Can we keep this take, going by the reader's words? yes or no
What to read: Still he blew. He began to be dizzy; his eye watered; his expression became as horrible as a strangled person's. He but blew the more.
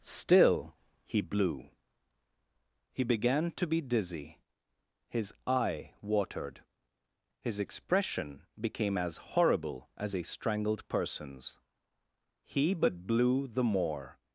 yes